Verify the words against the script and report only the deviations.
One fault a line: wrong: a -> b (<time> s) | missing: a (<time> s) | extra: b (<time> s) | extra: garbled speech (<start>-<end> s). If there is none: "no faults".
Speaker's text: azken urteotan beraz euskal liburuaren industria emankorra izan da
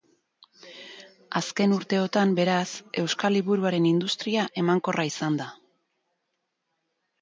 no faults